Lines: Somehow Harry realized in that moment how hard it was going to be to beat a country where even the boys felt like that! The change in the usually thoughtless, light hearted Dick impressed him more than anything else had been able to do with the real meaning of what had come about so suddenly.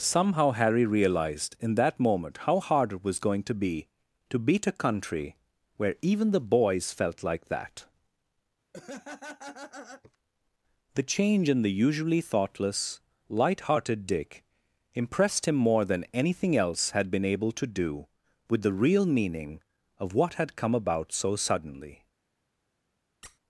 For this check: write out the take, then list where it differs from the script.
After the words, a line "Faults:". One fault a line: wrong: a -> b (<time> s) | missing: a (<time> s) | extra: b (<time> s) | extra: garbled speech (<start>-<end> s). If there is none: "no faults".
Somehow Harry realized in that moment how hard it was going to be to beat a country where even the boys felt like that! The change in the usually thoughtless, light hearted Dick impressed him more than anything else had been able to do with the real meaning of what had come about so suddenly.
Faults:
no faults